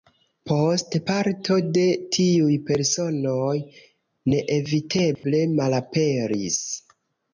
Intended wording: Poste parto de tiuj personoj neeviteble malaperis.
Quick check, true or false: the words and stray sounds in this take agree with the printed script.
false